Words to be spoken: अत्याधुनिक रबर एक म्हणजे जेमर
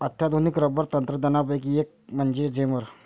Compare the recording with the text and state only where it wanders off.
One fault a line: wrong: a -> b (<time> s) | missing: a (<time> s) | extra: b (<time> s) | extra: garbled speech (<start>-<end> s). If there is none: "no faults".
extra: तंत्रज्ञानापैकी (0.8 s)